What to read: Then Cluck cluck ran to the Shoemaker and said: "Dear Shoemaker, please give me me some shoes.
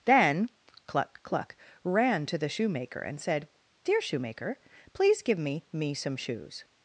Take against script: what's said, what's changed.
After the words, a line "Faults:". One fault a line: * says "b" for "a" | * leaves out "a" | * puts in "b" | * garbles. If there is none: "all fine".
Then Cluck cluck ran to the Shoemaker and said: "Dear Shoemaker, please give me me some shoes.
Faults:
all fine